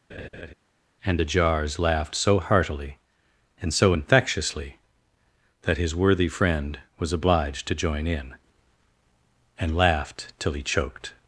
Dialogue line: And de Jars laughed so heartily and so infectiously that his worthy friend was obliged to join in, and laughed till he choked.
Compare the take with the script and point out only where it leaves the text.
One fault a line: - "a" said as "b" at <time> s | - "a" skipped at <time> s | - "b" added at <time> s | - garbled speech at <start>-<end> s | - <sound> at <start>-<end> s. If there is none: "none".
- laugh at 0.1-0.5 s